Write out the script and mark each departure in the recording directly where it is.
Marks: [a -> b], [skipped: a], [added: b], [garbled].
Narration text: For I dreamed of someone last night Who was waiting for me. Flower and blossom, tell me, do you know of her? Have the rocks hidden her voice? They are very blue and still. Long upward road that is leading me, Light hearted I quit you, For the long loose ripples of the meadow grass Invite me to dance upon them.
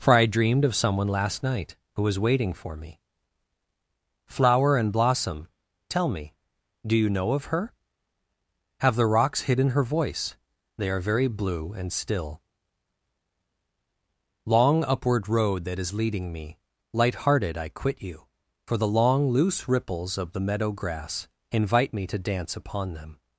For I dreamed of someone last night Who was waiting for me. Flower and blossom, tell me, do you know of her? Have the rocks hidden her voice? They are very blue and still. Long upward road that is leading me, Light hearted I quit you, For the long loose ripples of the meadow grass Invite me to dance upon them.